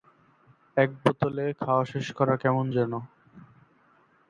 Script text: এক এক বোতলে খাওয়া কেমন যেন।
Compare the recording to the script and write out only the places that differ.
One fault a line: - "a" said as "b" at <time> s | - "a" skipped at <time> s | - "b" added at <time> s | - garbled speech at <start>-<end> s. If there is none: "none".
- "এক" skipped at 0.9 s
- "শেষ করা" added at 1.8 s